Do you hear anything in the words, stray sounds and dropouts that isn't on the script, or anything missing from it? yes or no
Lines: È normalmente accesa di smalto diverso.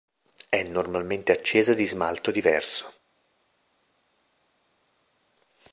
no